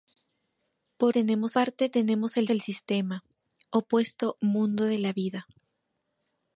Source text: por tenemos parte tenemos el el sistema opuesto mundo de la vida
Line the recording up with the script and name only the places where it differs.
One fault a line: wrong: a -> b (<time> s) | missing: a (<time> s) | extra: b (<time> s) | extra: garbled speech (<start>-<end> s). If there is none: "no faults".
no faults